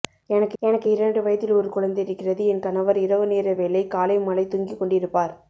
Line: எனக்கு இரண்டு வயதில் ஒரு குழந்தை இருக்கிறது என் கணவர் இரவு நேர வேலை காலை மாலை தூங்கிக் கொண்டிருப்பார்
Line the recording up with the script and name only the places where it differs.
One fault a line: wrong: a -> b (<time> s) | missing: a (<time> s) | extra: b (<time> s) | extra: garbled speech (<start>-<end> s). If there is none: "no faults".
extra: எனக்கு (0.6 s)